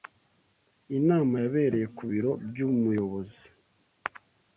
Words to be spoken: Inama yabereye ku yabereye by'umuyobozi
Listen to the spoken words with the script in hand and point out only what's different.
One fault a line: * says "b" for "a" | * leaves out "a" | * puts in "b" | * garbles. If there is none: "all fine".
* says "biro" for "yabereye"